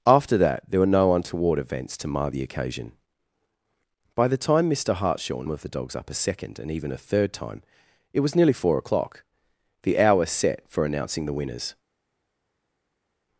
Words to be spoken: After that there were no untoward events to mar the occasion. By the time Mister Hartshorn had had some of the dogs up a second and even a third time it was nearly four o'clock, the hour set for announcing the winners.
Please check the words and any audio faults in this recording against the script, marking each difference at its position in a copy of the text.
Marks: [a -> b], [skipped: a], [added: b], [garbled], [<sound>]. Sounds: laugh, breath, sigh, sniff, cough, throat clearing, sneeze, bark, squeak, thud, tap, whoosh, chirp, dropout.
After that there were no untoward events to mar the occasion. By the time Mister Hartshorn [skipped: had had some] of the dogs up a second and even a third time it was nearly four o'clock, the hour set for announcing the winners.